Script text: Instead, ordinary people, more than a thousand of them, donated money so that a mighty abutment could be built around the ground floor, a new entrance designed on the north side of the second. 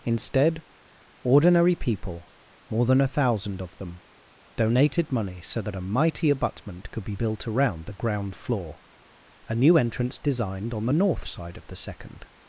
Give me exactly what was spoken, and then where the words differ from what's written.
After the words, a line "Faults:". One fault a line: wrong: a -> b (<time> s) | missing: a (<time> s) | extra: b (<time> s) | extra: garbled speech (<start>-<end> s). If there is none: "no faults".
Instead, ordinary people, more than a thousand of them, donated money so that a mighty abutment could be built around the ground floor, a new entrance designed on the north side of the second.
Faults:
no faults